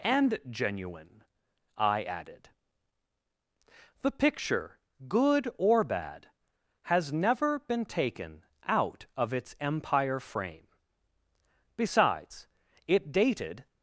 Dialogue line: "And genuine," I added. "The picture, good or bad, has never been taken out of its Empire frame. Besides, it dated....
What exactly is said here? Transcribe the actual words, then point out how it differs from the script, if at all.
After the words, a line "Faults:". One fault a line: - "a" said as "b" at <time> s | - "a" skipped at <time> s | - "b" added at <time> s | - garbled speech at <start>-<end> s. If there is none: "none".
"And genuine," I added. "The picture, good or bad, has never been taken out of its Empire frame. Besides, it dated....
Faults:
none